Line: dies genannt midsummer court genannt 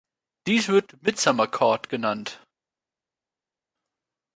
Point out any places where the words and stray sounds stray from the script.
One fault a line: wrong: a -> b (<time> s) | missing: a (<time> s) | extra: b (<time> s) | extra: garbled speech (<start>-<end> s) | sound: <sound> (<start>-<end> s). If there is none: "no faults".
wrong: genannt -> wird (0.7 s)